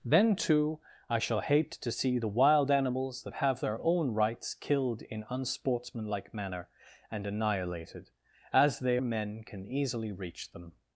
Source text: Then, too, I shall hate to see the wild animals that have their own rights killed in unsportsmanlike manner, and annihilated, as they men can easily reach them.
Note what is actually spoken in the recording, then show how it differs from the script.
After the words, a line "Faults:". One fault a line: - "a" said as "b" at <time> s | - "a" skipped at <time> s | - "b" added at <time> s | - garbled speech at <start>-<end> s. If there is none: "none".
Then, too, I shall hate to see the wild animals that have their own rights killed in unsportsmanlike manner, and annihilated, as they men can easily reach them.
Faults:
none